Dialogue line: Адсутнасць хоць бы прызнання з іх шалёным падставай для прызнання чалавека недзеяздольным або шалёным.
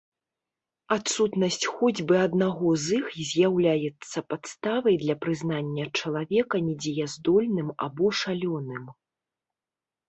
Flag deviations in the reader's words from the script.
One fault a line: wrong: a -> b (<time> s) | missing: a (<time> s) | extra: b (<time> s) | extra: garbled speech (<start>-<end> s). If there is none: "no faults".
wrong: прызнання -> аднаго (2.3 s)
wrong: шалёным -> з'яўляецца (3.3 s)